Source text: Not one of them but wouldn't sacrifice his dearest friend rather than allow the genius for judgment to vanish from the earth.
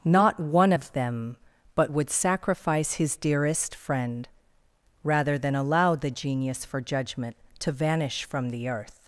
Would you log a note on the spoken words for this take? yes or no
yes